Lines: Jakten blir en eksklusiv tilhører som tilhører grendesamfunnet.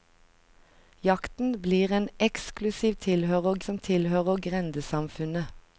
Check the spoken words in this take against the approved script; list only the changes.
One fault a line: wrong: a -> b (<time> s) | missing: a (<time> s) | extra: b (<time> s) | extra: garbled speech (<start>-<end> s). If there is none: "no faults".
no faults